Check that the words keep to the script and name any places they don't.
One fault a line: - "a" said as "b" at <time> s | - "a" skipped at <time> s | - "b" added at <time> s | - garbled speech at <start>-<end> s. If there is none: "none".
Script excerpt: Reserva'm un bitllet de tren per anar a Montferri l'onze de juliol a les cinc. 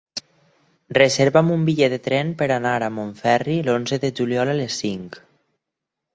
none